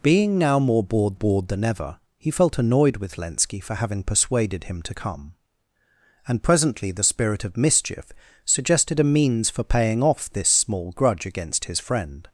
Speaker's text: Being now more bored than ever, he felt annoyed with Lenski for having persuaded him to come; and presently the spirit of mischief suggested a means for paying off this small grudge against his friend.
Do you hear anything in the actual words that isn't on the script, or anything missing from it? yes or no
yes